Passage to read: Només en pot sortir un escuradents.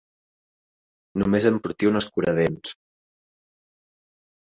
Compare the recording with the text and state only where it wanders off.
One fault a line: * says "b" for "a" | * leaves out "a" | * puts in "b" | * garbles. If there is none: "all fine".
* leaves out "pot"